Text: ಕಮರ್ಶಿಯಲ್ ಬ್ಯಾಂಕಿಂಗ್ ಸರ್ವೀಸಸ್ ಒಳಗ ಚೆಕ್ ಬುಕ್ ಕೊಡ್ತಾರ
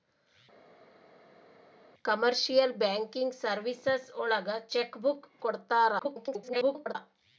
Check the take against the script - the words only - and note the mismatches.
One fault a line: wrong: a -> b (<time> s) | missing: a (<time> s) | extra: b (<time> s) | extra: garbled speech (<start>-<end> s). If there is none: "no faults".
extra: garbled speech (6.0-7.0 s)